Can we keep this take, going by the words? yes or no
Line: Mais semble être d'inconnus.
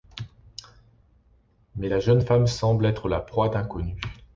no